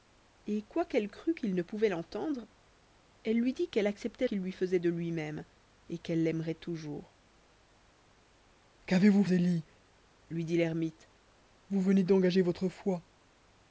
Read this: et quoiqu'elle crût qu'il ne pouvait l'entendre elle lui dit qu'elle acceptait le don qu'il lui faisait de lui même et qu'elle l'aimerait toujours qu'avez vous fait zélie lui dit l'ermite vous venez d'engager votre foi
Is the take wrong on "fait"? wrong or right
wrong